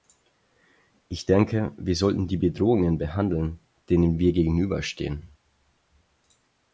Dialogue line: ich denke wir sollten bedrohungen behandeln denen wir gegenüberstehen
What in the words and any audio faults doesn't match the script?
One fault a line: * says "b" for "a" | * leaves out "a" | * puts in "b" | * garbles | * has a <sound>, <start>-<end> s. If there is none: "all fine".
* puts in "die"